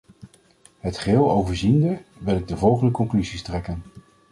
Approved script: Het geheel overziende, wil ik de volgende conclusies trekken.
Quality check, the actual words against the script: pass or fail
pass